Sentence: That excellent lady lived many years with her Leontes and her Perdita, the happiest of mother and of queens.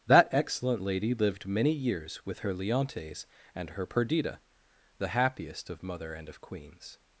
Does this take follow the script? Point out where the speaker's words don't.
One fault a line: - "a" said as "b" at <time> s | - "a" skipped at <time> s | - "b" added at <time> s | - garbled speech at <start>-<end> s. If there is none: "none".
none